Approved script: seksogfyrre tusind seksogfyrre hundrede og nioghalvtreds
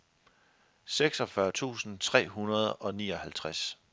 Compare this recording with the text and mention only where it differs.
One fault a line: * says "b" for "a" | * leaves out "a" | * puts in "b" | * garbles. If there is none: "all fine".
* says "tre" for "seksogfyrre"